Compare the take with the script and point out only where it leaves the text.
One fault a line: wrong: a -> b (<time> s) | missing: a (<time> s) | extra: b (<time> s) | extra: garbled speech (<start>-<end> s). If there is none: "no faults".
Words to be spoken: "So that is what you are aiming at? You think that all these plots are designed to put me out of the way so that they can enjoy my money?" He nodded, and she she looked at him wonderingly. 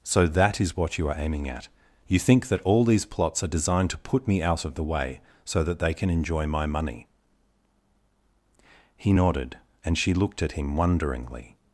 missing: she (10.1 s)